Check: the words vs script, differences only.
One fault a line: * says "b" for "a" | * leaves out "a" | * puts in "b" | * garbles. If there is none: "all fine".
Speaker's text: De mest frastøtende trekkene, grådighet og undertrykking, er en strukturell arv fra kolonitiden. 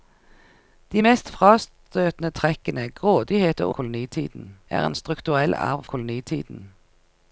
* says "kolonitiden" for "undertrykking"
* leaves out "fra"